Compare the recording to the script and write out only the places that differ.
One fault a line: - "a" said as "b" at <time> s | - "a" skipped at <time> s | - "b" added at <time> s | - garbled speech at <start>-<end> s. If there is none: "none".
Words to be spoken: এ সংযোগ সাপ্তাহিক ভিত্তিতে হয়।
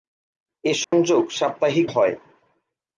- "ভিত্তিতে" skipped at 1.9 s